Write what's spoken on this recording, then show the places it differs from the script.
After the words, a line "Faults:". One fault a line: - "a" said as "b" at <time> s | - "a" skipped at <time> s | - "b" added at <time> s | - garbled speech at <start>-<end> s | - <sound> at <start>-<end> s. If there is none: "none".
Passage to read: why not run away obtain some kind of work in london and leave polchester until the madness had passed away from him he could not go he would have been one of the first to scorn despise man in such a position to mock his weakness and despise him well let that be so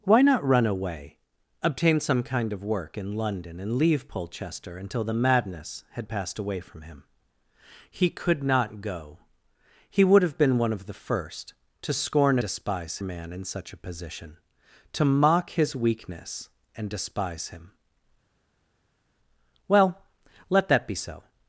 why not run away obtain some kind of work in london and leave polchester until the madness had passed away from him he could not go he would have been one of the first to scorn despise man in such a position to mock his weakness and despise him well let that be so
Faults:
none